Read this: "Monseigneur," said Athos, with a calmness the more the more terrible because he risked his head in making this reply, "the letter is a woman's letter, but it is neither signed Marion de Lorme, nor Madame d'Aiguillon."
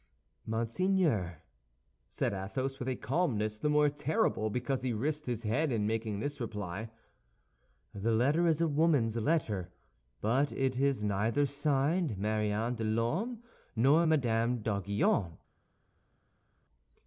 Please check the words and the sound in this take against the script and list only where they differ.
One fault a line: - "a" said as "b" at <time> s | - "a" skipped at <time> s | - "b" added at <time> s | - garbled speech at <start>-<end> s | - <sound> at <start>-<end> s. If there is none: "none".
- "the more" skipped at 3.9 s